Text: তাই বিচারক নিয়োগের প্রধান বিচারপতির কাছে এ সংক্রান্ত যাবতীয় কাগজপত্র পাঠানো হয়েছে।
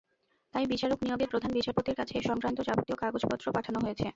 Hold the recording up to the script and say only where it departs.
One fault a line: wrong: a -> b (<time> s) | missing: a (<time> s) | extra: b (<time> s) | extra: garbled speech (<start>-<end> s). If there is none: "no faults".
no faults